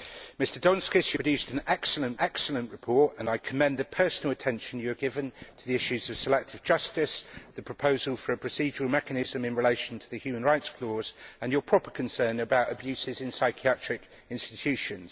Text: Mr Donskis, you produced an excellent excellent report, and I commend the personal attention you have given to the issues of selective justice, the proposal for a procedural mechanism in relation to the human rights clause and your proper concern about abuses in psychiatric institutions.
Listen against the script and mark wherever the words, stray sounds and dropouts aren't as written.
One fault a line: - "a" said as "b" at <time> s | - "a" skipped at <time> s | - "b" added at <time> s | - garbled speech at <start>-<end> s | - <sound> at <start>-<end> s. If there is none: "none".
none